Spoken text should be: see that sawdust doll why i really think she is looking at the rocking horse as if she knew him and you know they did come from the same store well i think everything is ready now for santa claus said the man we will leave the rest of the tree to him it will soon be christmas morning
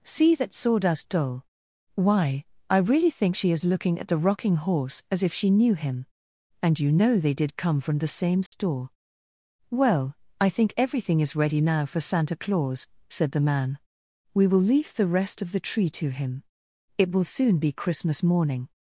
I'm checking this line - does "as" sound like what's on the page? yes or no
yes